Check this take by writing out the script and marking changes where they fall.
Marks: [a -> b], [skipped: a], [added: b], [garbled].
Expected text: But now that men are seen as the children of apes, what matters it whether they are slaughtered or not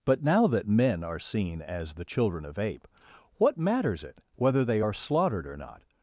But now that men are seen as the children of [apes, -> ape] what matters it whether they are slaughtered or not